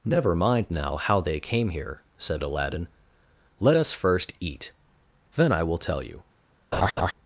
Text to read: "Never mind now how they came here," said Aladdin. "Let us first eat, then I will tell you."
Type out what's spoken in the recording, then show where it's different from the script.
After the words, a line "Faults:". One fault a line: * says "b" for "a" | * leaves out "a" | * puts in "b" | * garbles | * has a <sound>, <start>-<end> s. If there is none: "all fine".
"Never mind now how they came here," said Aladdin. "Let us first eat, then I will tell you."
Faults:
* has a laugh, 6.7-7.1 s